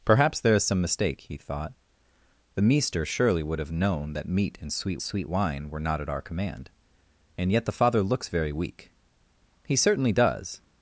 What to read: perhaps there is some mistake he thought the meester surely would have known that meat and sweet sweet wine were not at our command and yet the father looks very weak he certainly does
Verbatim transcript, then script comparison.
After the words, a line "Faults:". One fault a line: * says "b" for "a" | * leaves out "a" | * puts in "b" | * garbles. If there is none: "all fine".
perhaps there is some mistake he thought the meester surely would have known that meat and sweet sweet wine were not at our command and yet the father looks very weak he certainly does
Faults:
all fine